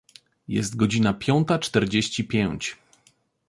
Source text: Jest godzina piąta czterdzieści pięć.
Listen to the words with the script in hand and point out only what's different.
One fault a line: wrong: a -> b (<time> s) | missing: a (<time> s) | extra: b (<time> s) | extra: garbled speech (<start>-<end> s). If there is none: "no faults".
no faults